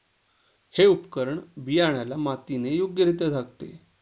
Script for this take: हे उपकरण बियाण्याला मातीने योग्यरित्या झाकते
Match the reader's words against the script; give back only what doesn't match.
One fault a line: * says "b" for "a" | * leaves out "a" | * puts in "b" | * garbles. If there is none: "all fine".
all fine